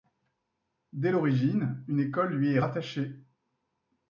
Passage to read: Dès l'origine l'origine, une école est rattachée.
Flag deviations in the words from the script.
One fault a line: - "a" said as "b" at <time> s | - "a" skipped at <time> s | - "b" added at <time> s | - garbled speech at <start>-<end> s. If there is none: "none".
- "l'origine" skipped at 1.8 s
- "lui" added at 2.3 s